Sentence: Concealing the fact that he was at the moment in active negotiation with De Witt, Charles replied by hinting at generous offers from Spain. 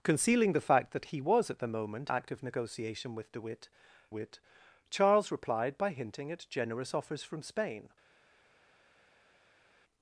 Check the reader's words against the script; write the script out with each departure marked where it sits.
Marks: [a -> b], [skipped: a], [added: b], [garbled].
Concealing the fact that he was at the moment [skipped: in] active negotiation with De Witt, [added: Witt] Charles replied by hinting at generous offers from Spain.